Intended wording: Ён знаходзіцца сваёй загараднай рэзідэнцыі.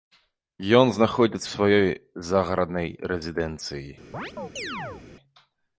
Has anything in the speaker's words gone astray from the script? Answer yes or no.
no